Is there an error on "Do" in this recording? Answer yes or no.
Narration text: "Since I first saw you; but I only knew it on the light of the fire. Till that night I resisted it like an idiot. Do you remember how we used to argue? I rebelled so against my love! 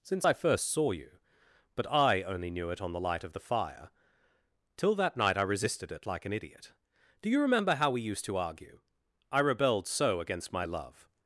no